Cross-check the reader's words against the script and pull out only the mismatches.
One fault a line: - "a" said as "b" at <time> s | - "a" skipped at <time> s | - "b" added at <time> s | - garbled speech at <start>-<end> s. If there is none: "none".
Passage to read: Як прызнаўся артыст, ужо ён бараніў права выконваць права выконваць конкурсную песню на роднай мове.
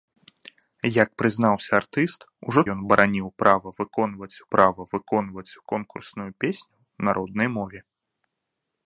none